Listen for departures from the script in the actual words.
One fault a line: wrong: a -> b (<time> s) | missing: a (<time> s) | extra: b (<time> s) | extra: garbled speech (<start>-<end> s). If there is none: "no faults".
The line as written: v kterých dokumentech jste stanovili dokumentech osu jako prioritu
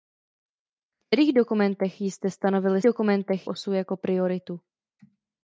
no faults